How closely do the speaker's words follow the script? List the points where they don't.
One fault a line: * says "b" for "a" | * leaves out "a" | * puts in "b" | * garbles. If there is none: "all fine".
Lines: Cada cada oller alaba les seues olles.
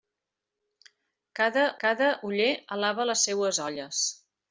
all fine